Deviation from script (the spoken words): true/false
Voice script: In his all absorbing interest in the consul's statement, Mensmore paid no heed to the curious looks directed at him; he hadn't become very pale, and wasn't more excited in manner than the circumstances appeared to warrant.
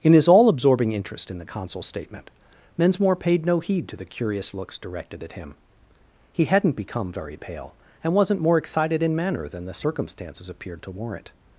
false